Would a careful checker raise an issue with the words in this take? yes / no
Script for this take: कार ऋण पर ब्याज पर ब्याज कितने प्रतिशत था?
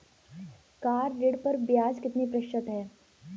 yes